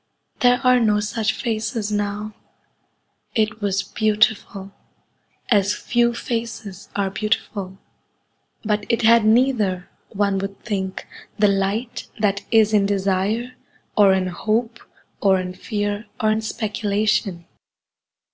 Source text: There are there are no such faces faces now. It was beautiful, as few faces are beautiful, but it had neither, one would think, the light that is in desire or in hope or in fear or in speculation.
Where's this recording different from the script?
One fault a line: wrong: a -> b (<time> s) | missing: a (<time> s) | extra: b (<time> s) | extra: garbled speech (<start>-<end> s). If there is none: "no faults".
missing: there are (0.8 s)
missing: faces (1.9 s)